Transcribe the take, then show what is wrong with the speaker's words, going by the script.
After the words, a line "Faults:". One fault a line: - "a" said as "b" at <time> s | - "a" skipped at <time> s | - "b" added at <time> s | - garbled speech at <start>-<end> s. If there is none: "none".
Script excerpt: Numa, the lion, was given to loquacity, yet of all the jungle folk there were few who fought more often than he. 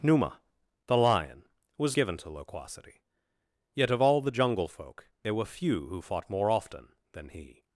Numa, the lion, was given to loquacity, yet of all the jungle folk there were few who fought more often than he.
Faults:
none